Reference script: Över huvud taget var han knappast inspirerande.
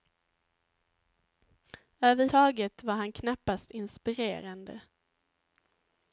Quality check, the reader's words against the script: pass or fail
fail